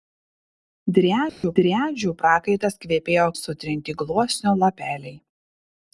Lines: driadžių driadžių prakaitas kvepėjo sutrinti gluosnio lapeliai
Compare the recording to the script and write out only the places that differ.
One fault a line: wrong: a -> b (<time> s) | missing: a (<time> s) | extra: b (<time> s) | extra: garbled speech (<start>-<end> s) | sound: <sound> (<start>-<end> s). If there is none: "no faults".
sound: dropout (1.3-1.4 s)